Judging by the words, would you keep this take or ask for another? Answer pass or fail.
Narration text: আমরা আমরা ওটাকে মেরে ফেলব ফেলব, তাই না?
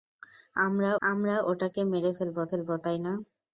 pass